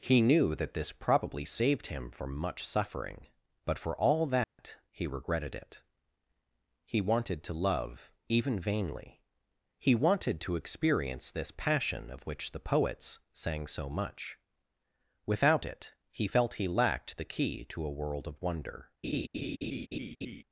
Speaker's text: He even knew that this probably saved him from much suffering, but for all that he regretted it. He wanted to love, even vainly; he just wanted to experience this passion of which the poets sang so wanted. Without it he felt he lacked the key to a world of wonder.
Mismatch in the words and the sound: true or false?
true